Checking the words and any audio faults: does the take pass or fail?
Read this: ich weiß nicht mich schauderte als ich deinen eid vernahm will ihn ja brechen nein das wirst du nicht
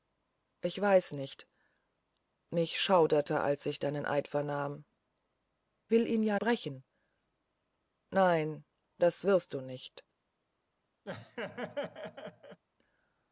fail